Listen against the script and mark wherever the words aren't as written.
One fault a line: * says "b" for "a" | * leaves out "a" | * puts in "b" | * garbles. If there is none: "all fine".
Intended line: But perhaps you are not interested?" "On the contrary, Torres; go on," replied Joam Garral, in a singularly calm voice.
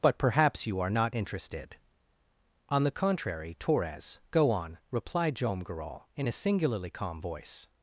all fine